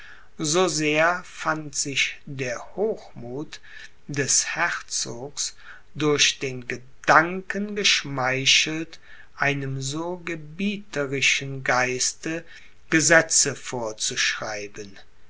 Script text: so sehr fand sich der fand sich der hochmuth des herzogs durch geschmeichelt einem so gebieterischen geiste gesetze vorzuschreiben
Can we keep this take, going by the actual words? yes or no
no